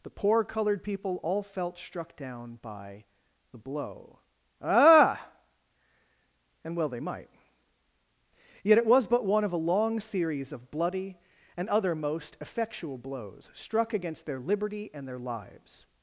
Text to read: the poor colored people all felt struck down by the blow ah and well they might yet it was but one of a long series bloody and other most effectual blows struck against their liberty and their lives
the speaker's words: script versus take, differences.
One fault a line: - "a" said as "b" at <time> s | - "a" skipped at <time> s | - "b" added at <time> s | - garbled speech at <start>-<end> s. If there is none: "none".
- "of" added at 10.5 s